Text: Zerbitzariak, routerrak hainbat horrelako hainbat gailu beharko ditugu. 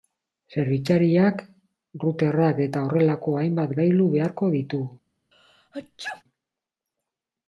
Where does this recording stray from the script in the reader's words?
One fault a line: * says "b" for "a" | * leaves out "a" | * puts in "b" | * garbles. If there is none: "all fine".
* says "eta" for "hainbat"